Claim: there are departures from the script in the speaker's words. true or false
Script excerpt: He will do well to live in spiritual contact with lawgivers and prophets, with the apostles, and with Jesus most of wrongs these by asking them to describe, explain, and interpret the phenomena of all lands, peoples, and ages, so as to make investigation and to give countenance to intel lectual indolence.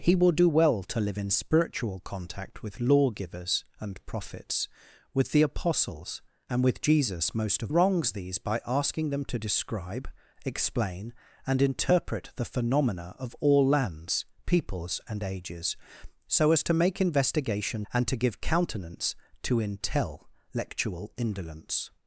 false